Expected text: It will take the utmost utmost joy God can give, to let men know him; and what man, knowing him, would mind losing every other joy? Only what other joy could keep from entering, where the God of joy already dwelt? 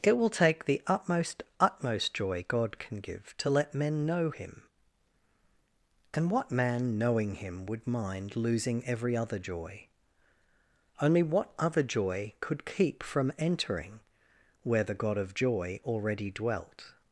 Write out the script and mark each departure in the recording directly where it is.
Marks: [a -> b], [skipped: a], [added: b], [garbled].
It will take the utmost utmost joy God can give, to let men know him; and what man, knowing him, would mind losing every other joy? Only what other joy could keep from entering, where the God of joy already dwelt?